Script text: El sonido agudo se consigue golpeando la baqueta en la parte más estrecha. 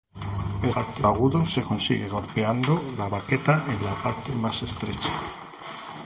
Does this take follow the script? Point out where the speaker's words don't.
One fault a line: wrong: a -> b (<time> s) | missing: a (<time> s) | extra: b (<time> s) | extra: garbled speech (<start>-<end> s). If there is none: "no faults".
wrong: sonido -> parte (0.7 s)